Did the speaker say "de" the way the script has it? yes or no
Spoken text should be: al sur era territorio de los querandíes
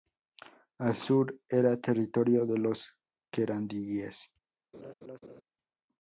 yes